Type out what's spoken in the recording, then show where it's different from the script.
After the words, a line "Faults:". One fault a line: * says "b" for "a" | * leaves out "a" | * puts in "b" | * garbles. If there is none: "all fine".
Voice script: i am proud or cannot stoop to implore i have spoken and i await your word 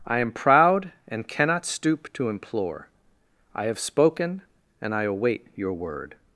i am proud and cannot stoop to implore i have spoken and i await your word
Faults:
* says "and" for "or"